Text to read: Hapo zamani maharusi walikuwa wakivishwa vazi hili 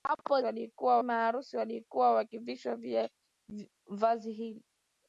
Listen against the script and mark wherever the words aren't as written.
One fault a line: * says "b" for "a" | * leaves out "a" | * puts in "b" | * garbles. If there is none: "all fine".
* says "walikuwa" for "zamani"